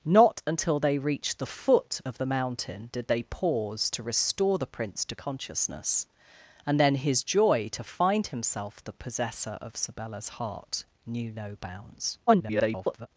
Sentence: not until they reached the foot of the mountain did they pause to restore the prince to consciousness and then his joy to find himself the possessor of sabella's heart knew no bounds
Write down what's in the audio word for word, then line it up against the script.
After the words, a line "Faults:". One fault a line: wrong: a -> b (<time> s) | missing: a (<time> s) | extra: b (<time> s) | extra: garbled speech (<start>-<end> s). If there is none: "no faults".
not until they reached the foot of the mountain did they pause to restore the prince to consciousness and then his joy to find himself the possessor of sabella's heart knew no bounds [garbled]
Faults:
extra: garbled speech (12.3-13.1 s)